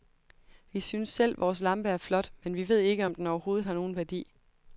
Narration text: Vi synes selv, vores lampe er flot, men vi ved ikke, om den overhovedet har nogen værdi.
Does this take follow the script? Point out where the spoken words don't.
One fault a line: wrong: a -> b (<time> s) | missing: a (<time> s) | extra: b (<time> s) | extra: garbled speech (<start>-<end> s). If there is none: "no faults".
no faults